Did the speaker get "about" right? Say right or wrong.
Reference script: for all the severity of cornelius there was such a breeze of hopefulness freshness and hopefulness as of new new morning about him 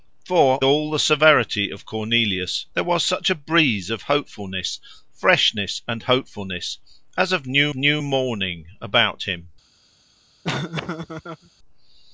right